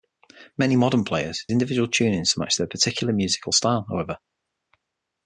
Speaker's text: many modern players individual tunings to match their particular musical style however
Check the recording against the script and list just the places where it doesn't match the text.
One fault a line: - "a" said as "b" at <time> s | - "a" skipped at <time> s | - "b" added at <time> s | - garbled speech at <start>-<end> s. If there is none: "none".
none